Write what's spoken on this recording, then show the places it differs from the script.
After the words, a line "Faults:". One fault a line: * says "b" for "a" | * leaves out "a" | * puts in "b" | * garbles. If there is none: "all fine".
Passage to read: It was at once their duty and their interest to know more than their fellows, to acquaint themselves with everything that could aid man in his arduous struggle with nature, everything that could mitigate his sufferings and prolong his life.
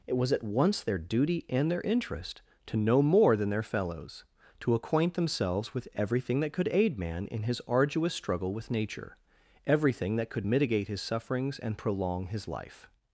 It was at once their duty and their interest to know more than their fellows, to acquaint themselves with everything that could aid man in his arduous struggle with nature, everything that could mitigate his sufferings and prolong his life.
Faults:
all fine